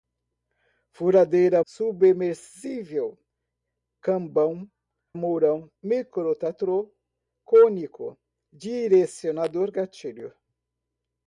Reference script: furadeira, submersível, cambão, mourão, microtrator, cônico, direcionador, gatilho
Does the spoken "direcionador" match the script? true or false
true